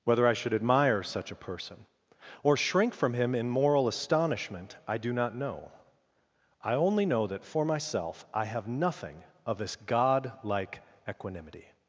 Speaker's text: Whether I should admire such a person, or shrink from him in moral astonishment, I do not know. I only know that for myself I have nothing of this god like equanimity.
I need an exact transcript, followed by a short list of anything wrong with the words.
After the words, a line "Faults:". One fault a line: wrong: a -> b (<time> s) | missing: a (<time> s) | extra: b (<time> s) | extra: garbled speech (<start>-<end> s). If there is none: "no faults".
Whether I should admire such a person, or shrink from him in moral astonishment, I do not know. I only know that for myself I have nothing of this god like equanimity.
Faults:
no faults